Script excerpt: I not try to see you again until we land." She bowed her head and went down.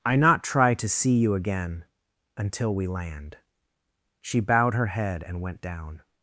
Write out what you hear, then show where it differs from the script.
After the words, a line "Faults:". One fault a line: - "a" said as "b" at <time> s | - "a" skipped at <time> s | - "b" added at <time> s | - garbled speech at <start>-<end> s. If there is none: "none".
I not try to see you again until we land." She bowed her head and went down.
Faults:
none